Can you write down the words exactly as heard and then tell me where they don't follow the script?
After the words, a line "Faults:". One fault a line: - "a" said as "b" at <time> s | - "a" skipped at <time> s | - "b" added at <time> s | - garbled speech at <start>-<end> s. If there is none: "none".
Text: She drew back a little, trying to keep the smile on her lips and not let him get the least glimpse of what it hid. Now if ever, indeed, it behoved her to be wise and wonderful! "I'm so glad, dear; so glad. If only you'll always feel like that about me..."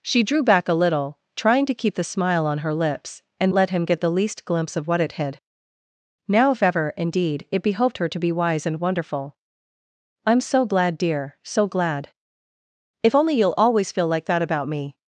She drew back a little, trying to keep the smile on her lips and let him get the least glimpse of what it hid. Now if ever, indeed, it behoved her to be wise and wonderful! "I'm so glad, dear; so glad. If only you'll always feel like that about me..."
Faults:
- "not" skipped at 3.5 s